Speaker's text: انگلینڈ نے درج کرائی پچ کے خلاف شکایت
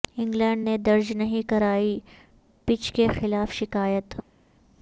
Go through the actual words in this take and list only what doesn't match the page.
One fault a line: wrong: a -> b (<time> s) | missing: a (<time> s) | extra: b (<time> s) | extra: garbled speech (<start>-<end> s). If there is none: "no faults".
extra: نہیں (1.1 s)